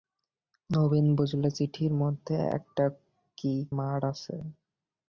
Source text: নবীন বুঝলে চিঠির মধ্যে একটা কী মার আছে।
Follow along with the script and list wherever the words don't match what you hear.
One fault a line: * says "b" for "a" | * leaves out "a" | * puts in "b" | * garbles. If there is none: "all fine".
all fine